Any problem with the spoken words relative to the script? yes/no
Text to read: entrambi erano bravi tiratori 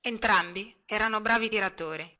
no